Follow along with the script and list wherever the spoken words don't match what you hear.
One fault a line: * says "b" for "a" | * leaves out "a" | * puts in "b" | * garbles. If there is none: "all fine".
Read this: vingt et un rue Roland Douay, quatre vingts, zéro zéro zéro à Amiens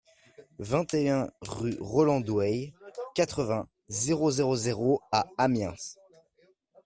all fine